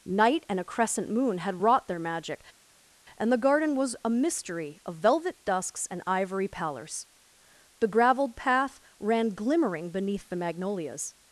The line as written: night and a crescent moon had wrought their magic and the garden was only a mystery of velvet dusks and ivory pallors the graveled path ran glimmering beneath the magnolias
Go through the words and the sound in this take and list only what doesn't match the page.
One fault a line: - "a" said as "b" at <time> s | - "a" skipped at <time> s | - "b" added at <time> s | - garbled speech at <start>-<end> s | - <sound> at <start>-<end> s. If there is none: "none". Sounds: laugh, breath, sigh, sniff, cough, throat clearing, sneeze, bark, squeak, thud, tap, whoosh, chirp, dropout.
- "only" skipped at 4.0 s